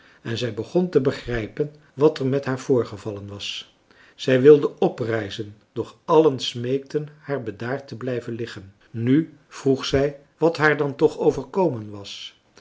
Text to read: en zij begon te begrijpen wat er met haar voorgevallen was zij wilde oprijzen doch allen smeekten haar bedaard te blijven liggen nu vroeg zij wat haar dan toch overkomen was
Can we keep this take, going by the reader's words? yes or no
yes